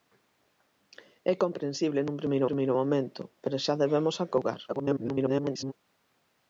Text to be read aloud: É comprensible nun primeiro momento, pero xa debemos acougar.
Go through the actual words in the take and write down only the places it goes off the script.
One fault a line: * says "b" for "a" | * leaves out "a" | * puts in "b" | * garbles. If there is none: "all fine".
* puts in "primeiro"
* garbles